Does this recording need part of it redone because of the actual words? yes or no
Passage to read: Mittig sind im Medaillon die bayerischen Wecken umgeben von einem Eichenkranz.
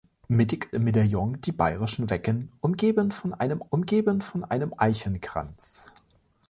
yes